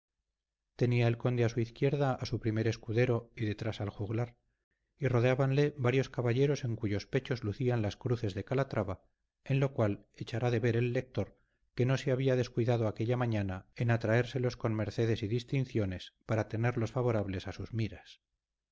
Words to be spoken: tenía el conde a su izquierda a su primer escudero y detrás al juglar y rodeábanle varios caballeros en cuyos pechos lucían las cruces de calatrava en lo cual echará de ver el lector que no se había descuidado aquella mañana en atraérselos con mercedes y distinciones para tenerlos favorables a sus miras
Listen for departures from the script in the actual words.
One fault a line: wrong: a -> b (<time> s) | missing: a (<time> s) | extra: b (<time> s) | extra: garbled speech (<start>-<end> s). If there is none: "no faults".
no faults